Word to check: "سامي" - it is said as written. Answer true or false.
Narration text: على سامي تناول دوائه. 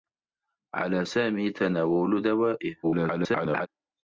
true